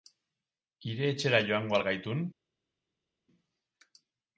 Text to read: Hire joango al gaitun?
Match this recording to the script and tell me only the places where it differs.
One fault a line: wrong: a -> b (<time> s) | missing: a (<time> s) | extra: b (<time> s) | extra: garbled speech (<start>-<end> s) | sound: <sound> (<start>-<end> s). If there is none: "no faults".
extra: etxera (1.1 s)